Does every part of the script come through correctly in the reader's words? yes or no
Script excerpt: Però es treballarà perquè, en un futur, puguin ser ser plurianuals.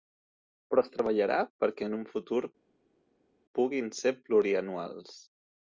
no